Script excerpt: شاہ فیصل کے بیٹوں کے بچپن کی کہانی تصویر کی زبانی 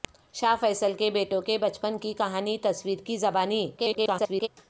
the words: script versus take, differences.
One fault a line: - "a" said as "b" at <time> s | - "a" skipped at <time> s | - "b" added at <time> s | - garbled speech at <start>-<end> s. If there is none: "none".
- garbled speech at 3.8-4.5 s